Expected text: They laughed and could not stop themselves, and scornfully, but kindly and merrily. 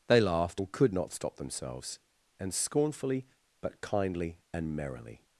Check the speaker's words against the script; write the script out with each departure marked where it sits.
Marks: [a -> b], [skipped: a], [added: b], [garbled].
They laughed and could not stop themselves, and scornfully, but kindly and merrily.